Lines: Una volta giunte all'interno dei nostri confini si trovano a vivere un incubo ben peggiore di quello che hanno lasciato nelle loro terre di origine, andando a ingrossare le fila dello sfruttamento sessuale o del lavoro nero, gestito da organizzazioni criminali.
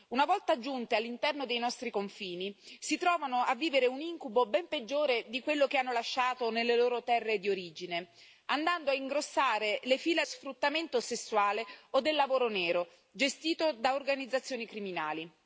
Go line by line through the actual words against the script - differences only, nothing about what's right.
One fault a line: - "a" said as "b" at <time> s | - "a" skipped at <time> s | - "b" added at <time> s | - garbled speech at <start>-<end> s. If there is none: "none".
- "dello" skipped at 10.2 s